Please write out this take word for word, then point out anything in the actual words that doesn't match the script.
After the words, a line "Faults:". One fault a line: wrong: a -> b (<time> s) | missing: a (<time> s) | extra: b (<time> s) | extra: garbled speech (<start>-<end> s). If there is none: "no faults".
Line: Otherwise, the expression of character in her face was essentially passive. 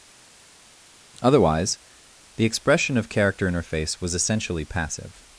Otherwise, the expression of character in her face was essentially passive.
Faults:
no faults